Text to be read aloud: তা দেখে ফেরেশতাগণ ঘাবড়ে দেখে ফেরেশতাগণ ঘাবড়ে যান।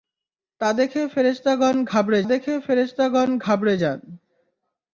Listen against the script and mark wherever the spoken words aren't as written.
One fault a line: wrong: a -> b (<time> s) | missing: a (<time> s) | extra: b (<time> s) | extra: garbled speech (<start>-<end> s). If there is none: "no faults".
no faults